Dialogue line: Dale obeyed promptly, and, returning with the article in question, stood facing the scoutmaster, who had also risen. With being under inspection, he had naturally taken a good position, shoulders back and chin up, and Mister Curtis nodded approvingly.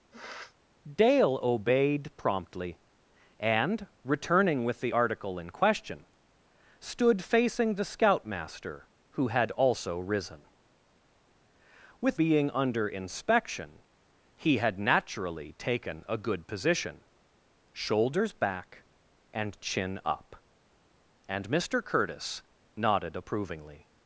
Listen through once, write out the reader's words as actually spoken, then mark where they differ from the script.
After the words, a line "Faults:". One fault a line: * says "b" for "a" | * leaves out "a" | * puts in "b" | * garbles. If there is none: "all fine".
Dale obeyed promptly, and, returning with the article in question, stood facing the scoutmaster, who had also risen. With being under inspection, he had naturally taken a good position, shoulders back and chin up, and Mister Curtis nodded approvingly.
Faults:
all fine